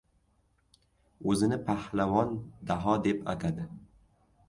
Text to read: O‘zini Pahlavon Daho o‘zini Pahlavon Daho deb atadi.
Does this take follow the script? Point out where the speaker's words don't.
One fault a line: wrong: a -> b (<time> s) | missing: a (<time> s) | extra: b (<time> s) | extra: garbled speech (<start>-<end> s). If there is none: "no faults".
missing: o‘zini Pahlavon Daho (3.0 s)